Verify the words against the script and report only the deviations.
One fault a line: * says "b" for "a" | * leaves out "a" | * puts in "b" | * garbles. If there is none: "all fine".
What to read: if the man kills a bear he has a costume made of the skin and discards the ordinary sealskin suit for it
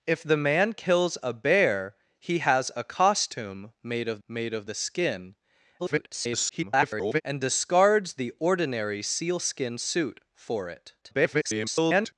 * puts in "made of"
* garbles
* garbles